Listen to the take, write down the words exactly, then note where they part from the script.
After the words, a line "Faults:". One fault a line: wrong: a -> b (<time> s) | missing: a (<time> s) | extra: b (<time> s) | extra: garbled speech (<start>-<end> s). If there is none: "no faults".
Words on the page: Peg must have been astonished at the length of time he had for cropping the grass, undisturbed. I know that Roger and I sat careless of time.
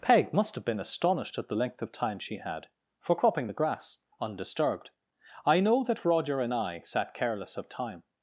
Peg must have been astonished at the length of time she had for cropping the grass, undisturbed. I know that Roger and I sat careless of time.
Faults:
wrong: he -> she (2.2 s)